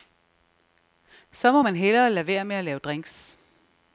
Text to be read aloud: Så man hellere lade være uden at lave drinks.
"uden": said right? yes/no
no